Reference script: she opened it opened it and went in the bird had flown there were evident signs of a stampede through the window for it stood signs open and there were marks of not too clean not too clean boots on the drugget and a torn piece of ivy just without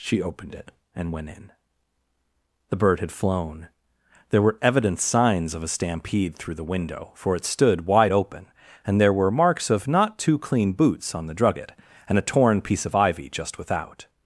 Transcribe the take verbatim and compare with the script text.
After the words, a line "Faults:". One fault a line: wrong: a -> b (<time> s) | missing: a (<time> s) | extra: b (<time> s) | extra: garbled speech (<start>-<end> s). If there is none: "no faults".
she opened it and went in the bird had flown there were evident signs of a stampede through the window for it stood wide open and there were marks of not too clean boots on the drugget and a torn piece of ivy just without
Faults:
missing: opened it (0.7 s)
wrong: signs -> wide (7.8 s)
missing: not too clean (10.7 s)